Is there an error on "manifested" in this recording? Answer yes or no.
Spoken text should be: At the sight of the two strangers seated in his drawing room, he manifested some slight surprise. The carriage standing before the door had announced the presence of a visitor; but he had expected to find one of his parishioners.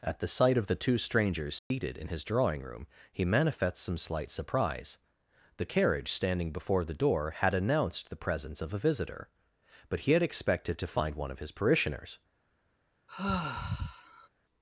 yes